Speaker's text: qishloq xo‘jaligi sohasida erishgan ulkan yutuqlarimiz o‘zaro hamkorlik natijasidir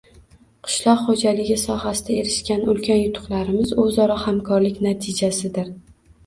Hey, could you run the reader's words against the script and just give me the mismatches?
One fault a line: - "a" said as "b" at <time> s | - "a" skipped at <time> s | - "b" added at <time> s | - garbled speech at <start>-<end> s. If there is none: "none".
none